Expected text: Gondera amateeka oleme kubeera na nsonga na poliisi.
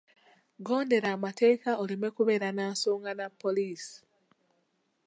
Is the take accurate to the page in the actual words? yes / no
yes